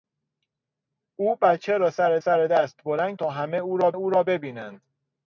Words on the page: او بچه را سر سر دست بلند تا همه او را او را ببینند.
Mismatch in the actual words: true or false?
false